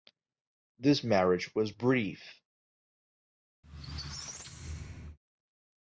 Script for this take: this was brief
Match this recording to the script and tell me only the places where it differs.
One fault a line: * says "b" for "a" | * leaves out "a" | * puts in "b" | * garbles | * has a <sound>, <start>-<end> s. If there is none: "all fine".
* puts in "marriage"
* has a squeak, 3.6-5.2 s